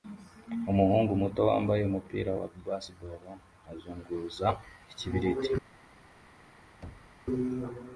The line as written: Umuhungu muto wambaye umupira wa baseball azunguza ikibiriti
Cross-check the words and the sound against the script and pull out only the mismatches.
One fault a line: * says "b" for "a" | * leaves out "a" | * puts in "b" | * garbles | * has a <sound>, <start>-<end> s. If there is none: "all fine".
* has a thud, 6.8-7.2 s